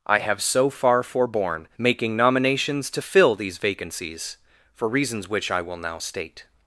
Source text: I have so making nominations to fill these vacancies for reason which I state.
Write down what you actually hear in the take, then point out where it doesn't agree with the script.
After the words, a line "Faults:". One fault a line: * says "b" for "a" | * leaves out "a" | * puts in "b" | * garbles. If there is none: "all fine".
I have so far forborne making nominations to fill these vacancies for reasons which I will now state.
Faults:
* puts in "far forborne"
* says "reasons" for "reason"
* puts in "will now"